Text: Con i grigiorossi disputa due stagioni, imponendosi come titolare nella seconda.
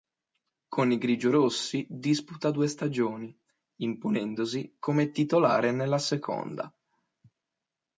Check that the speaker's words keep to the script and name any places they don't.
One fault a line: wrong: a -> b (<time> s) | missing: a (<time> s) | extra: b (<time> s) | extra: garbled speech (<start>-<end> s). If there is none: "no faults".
no faults